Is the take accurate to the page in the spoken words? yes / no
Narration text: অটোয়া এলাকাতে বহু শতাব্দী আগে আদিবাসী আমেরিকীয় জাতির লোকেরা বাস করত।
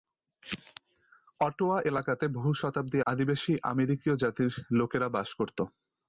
no